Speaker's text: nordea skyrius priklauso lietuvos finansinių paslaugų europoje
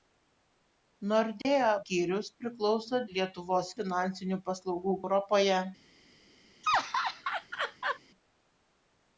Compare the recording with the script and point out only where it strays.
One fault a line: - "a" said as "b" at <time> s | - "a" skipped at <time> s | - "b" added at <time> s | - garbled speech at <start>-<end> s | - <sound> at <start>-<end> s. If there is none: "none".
- dropout at 1.4-1.5 s
- laugh at 6.6-8.0 s